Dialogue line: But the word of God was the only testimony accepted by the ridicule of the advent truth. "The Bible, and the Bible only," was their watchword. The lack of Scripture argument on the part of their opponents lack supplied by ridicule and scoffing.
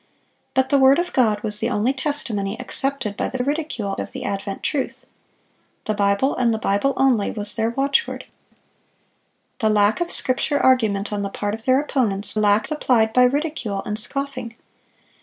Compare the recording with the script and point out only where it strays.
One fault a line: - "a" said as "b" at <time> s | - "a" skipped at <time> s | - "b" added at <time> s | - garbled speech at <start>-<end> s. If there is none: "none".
none